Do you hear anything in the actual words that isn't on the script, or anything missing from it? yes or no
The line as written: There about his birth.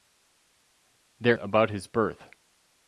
no